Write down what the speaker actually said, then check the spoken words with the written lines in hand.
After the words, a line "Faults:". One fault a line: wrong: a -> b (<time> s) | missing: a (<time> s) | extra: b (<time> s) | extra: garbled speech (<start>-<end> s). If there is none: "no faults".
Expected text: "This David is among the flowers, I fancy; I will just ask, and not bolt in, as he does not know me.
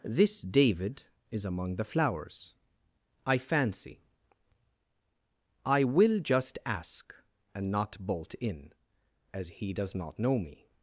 "This David is among the flowers, I fancy; I will just ask, and not bolt in, as he does not know me.
Faults:
no faults